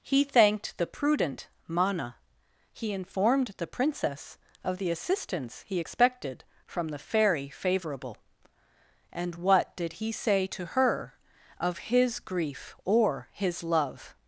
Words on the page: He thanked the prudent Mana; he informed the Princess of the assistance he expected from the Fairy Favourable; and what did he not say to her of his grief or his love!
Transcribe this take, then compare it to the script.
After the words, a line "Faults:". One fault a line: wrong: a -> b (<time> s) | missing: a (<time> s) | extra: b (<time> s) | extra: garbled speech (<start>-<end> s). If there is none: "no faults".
He thanked the prudent Mana; he informed the Princess of the assistance he expected from the Fairy Favourable; and what did he say to her of his grief or his love!
Faults:
missing: not (10.1 s)